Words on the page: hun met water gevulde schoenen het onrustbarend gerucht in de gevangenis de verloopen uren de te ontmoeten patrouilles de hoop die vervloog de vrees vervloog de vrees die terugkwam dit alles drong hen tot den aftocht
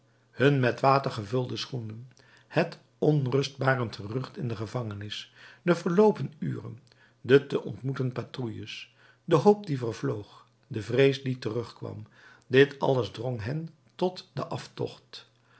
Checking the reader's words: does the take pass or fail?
fail